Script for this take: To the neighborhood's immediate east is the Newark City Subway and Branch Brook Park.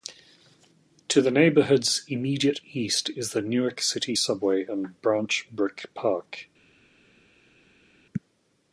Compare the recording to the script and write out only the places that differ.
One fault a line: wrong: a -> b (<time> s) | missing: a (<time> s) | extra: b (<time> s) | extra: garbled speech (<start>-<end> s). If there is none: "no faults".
no faults